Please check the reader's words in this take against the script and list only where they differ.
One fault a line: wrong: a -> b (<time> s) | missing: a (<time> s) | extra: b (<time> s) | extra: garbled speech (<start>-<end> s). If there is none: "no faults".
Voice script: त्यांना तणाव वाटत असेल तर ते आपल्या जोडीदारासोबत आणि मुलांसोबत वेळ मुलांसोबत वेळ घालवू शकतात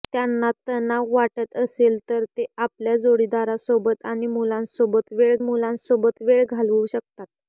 no faults